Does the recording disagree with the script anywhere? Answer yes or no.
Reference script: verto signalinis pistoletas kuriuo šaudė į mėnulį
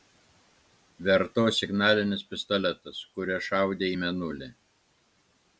no